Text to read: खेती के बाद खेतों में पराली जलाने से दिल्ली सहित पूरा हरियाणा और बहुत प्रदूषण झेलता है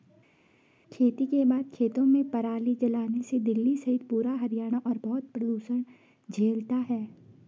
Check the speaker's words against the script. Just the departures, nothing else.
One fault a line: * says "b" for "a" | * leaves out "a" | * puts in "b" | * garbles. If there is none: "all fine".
all fine